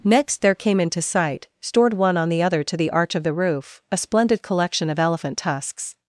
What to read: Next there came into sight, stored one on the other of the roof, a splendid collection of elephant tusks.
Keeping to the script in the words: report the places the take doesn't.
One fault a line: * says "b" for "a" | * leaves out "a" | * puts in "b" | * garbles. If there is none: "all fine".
* puts in "to the arch"